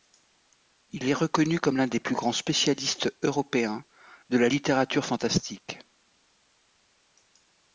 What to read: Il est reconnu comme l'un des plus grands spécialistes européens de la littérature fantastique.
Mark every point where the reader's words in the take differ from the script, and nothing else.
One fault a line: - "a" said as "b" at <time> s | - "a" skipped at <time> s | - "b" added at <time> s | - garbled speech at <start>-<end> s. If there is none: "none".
none